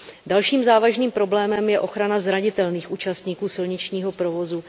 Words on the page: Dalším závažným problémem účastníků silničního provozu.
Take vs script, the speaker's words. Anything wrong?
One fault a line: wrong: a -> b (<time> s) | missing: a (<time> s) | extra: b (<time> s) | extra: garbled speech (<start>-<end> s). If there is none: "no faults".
extra: je ochrana zranitelných (1.7 s)